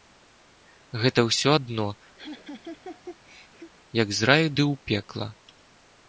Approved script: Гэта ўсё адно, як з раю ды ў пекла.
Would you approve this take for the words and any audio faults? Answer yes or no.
no